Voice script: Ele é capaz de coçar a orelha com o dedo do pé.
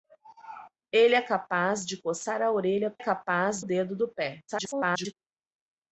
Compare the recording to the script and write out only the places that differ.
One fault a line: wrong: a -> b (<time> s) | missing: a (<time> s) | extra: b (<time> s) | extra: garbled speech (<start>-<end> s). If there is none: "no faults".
wrong: com -> capaz (3.0 s)
extra: garbled speech (4.5-5.1 s)